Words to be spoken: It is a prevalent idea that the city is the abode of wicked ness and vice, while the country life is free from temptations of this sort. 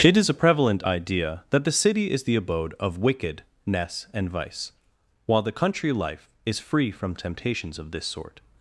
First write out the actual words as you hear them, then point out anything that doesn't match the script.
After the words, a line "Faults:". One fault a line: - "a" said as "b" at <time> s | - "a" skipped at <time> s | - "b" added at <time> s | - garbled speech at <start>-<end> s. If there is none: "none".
It is a prevalent idea that the city is the abode of wicked ness and vice, while the country life is free from temptations of this sort.
Faults:
none